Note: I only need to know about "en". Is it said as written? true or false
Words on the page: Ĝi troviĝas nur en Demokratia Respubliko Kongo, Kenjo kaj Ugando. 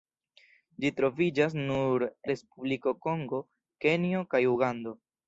false